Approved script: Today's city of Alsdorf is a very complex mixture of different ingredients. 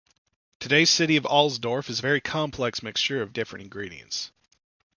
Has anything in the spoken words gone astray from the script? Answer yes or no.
no